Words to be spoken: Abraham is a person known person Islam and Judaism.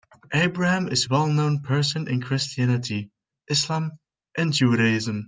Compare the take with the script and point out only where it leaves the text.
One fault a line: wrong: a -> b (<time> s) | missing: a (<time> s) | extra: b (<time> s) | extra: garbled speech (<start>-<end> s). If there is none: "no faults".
wrong: person -> well (1.1 s)
extra: in Christianity (2.1 s)